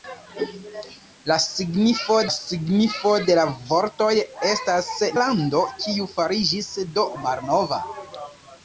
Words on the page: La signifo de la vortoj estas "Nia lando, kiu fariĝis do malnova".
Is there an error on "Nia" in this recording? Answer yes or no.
yes